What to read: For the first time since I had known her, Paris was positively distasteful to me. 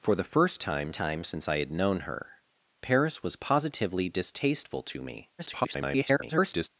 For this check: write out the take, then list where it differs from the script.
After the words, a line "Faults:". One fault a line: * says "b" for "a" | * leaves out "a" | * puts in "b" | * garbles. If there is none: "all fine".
For the first time time since I had known her, Paris was positively distasteful to me. [garbled]
Faults:
* puts in "time"
* garbles